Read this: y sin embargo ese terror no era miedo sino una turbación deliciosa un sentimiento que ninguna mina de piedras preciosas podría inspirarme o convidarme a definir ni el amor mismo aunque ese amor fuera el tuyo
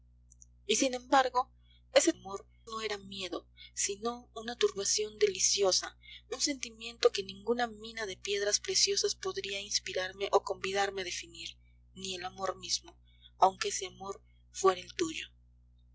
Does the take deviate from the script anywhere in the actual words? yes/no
yes